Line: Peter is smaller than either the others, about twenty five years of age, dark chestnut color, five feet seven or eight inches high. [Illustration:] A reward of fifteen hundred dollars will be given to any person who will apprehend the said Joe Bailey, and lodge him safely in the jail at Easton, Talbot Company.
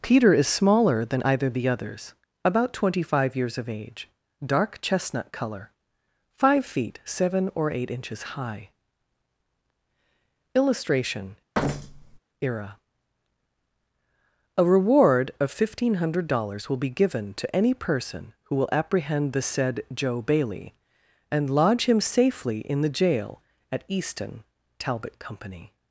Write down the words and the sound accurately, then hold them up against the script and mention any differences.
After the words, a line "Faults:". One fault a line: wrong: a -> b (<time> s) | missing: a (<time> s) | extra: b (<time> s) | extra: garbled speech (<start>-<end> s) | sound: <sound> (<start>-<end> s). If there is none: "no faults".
Peter is smaller than either the others, about twenty five years of age, dark chestnut color, five feet seven or eight inches high. [Illustration:] era A reward of fifteen hundred dollars will be given to any person who will apprehend the said Joe Bailey, and lodge him safely in the jail at Easton, Talbot Company.
Faults:
sound: thud (11.5-12.2 s)
extra: era (12.4 s)